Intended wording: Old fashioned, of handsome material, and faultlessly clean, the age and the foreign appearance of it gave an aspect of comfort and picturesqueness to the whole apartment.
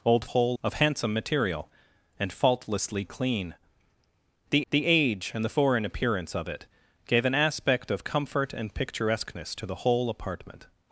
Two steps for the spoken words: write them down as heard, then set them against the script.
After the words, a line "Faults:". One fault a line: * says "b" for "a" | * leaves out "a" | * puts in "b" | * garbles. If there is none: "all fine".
Old whole, of handsome material, and faultlessly clean, the the age and the foreign appearance of it gave an aspect of comfort and picturesqueness to the whole apartment.
Faults:
* says "whole" for "fashioned"
* puts in "the"